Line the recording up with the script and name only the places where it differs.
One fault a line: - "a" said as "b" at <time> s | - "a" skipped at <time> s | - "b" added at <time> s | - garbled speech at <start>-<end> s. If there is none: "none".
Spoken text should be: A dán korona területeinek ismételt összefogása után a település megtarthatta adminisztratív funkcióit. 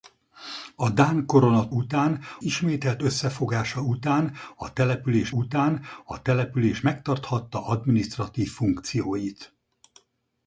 - "területeinek" said as "után" at 1.7 s
- "után a település" added at 5.3 s